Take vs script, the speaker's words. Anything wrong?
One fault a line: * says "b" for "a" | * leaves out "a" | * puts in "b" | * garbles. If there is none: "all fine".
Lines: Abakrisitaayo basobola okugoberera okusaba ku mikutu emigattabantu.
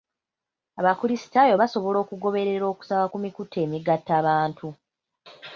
all fine